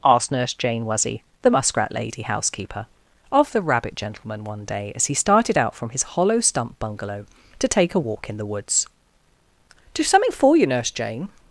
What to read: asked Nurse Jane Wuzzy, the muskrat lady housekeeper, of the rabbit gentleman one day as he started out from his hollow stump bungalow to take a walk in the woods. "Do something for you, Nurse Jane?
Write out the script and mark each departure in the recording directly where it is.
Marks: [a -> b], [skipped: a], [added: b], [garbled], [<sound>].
asked Nurse Jane Wuzzy, the muskrat lady housekeeper, of the rabbit gentleman one day as he started out from his hollow stump bungalow to take a walk in the woods. "Do something for you, Nurse Jane?